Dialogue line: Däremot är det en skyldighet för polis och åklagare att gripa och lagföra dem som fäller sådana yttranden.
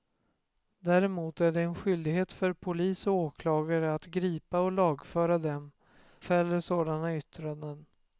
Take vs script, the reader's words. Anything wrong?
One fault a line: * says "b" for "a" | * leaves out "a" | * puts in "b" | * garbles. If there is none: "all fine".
* leaves out "som"